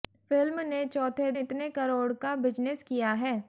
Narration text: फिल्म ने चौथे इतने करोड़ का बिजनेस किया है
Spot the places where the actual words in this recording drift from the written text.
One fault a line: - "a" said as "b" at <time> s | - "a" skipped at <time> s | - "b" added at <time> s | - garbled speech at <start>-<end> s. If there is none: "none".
none